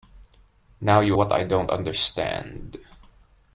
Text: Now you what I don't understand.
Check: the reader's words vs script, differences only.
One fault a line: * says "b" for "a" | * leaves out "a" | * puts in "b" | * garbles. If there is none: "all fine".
all fine